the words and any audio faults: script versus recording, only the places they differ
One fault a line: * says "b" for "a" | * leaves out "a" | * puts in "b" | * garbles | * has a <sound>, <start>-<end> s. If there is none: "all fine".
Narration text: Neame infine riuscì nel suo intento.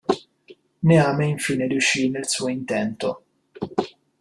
all fine